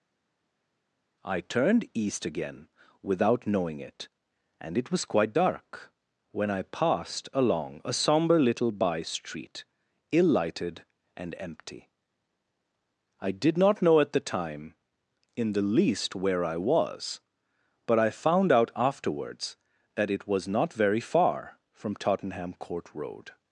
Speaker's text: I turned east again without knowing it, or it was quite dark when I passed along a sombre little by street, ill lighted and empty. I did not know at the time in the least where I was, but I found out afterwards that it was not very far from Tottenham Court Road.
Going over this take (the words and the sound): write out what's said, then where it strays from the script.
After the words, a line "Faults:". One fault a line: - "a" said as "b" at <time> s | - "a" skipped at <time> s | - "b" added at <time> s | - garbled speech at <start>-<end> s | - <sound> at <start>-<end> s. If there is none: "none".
I turned east again without knowing it, and it was quite dark when I passed along a sombre little by street, ill lighted and empty. I did not know at the time in the least where I was, but I found out afterwards that it was not very far from Tottenham Court Road.
Faults:
- "or" said as "and" at 4.6 s